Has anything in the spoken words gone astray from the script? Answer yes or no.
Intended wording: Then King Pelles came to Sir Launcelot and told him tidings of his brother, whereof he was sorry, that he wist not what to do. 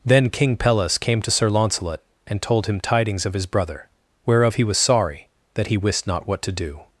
no